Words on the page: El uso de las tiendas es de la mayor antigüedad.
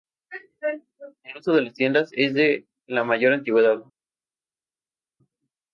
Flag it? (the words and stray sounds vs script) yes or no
no